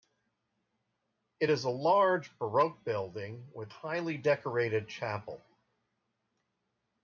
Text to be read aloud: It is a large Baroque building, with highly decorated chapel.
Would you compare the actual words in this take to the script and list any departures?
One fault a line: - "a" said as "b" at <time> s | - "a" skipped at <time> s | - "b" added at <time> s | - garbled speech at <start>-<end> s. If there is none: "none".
none